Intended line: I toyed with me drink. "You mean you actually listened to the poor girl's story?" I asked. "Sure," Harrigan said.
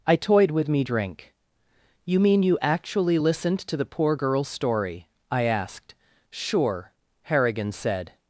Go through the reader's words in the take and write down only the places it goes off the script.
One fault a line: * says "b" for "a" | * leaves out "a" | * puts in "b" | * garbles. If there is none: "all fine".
all fine